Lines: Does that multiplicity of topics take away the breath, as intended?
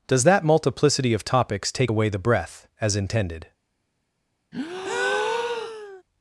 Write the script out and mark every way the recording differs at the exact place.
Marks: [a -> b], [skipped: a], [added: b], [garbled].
Does that multiplicity of topics take away the breath, as intended?